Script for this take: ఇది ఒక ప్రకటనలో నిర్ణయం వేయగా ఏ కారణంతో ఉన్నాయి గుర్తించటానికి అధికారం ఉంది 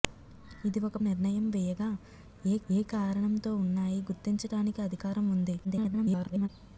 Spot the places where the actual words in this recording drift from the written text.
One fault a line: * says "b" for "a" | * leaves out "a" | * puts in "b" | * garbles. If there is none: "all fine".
* leaves out "ప్రకటనలో"
* puts in "ఏ"
* garbles